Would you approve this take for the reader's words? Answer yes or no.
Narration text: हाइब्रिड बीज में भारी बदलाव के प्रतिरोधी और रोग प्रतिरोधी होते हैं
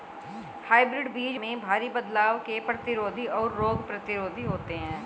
yes